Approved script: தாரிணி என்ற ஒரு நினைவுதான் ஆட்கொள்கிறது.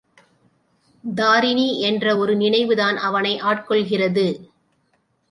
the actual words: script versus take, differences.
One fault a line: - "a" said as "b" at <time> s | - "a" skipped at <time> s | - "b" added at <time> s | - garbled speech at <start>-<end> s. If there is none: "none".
- "அவனை" added at 3.0 s